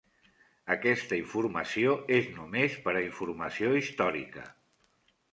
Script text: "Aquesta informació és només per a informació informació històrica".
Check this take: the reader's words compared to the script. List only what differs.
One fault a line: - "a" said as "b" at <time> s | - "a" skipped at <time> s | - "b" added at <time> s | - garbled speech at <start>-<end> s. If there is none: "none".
- "informació" skipped at 3.7 s